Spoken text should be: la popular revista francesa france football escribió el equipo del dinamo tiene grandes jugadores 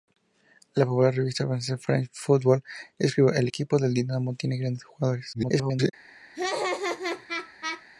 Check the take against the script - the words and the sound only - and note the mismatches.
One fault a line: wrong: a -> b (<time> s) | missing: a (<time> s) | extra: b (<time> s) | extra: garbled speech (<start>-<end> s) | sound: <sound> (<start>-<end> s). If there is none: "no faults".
extra: garbled speech (5.3-5.9 s)
sound: laugh (6.3-7.8 s)